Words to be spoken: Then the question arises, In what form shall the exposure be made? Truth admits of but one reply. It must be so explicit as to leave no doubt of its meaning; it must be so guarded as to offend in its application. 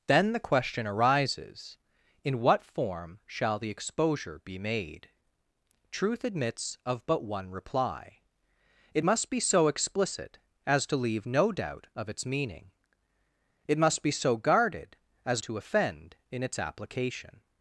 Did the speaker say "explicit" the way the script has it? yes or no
yes